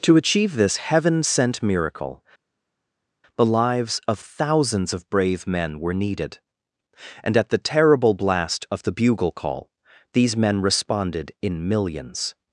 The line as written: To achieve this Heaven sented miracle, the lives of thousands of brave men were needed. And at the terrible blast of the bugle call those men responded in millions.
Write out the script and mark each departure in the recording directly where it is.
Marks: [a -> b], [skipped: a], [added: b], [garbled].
To achieve this Heaven [sented -> sent] miracle, the lives of thousands of brave men were needed. And at the terrible blast of the bugle call [those -> these] men responded in millions.